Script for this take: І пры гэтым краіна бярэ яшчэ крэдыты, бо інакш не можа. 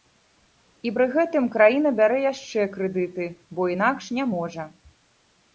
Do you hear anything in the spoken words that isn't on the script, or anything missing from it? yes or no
no